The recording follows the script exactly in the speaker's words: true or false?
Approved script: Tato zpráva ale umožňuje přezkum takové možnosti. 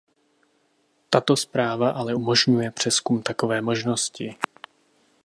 true